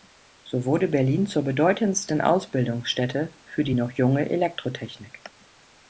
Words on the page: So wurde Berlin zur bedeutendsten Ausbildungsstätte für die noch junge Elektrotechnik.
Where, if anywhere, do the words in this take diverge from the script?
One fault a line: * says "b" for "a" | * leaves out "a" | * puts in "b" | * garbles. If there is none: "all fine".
all fine